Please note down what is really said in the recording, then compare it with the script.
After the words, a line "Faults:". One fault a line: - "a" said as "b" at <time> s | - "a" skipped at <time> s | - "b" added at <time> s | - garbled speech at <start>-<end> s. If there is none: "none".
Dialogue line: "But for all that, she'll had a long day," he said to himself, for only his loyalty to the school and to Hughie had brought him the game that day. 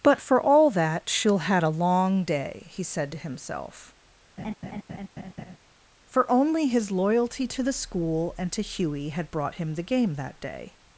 "But for all that, she'll had a long day," he said to himself, for only his loyalty to the school and to Hughie had brought him the game that day.
Faults:
none